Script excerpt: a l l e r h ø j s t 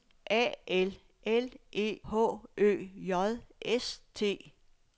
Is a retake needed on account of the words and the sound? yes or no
yes